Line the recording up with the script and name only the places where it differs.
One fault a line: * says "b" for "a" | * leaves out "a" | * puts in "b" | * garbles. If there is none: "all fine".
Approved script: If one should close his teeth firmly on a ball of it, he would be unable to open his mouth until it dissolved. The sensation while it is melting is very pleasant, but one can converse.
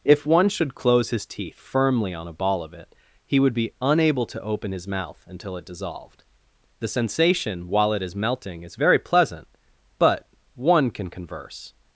all fine